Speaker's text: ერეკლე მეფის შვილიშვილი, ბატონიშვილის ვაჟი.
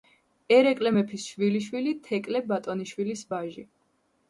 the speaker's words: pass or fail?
fail